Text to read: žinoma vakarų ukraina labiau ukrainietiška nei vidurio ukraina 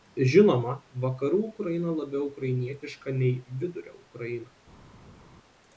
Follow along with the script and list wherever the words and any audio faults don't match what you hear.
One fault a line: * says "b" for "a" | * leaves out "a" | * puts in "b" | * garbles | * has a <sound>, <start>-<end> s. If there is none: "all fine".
all fine